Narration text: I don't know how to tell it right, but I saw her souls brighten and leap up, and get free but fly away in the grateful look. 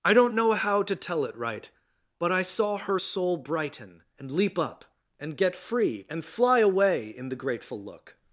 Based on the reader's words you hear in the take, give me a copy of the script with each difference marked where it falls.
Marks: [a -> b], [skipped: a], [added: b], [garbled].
I don't know how to tell it right, but I saw her [souls -> soul] brighten and leap up, and get free [but -> and] fly away in the grateful look.